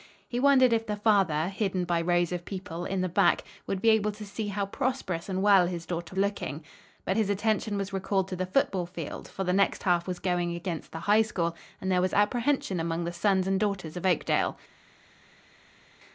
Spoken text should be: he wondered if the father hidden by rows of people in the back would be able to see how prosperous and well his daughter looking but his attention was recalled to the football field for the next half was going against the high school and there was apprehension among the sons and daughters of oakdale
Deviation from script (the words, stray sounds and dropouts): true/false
false